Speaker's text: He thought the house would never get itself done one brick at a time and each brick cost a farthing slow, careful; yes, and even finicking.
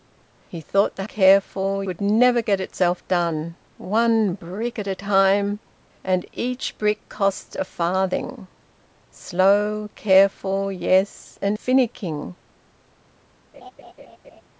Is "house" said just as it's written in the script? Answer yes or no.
no